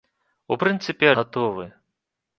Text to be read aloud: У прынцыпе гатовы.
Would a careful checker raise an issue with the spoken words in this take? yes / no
no